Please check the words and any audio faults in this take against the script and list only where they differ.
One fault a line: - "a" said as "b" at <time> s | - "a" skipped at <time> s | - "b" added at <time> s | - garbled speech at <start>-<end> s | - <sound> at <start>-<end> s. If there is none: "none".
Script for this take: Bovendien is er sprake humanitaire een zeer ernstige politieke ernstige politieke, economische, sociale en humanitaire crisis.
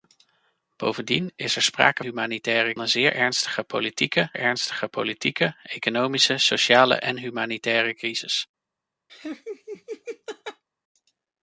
- laugh at 9.1-10.6 s